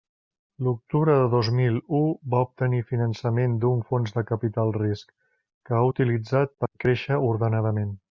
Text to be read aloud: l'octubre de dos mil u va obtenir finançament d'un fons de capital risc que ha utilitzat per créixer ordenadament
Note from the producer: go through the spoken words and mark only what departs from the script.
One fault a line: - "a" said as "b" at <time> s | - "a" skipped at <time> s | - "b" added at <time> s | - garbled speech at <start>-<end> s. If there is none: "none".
none